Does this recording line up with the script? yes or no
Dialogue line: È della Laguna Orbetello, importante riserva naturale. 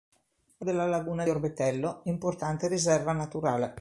yes